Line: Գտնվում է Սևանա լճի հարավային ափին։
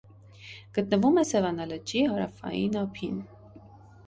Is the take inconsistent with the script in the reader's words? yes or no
no